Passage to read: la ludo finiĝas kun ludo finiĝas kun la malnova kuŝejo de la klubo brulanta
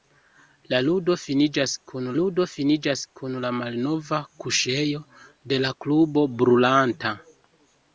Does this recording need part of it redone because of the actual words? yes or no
no